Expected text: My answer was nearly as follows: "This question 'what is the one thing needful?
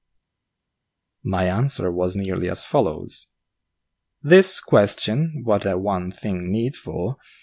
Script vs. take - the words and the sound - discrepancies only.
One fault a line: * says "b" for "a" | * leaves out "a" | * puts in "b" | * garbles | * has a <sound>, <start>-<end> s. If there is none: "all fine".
* leaves out "is"